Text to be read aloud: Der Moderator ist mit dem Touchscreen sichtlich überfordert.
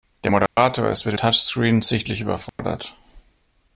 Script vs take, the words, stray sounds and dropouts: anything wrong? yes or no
yes